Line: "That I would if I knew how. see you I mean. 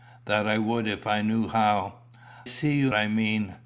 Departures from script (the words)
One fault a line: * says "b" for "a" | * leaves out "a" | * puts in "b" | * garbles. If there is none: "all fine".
all fine